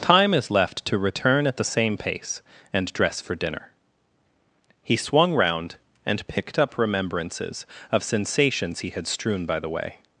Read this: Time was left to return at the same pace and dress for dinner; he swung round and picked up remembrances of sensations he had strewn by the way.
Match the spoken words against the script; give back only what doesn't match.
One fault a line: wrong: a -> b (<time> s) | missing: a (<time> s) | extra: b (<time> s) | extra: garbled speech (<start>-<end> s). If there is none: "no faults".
wrong: was -> is (0.3 s)